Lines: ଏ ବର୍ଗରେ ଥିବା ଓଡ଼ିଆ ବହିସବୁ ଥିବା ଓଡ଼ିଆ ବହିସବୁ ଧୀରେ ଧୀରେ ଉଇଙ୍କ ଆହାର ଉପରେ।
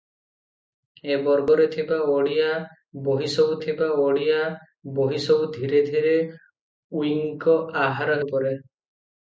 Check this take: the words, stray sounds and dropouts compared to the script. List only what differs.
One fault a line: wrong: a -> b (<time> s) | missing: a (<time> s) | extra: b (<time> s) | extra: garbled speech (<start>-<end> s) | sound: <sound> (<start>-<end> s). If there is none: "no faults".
no faults